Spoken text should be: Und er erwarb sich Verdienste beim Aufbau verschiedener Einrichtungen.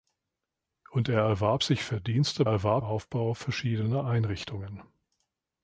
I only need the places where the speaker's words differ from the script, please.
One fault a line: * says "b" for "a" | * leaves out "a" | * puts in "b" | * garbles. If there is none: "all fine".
* says "erwarb" for "beim"